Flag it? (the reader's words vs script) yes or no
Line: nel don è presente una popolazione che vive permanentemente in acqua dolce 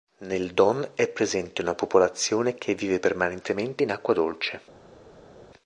no